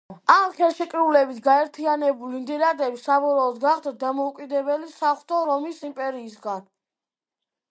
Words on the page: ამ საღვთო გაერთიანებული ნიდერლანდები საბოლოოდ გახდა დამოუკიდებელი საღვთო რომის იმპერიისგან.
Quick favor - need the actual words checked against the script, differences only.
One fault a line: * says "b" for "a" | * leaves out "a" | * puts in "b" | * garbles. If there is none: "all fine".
* says "ხელშეკრულებით" for "საღვთო"